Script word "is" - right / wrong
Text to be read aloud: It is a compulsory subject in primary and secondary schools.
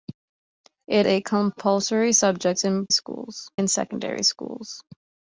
wrong